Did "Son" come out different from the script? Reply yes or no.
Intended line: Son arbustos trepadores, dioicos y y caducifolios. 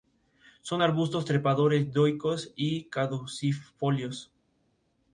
no